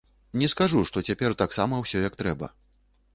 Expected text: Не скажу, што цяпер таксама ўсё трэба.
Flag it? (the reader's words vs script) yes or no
yes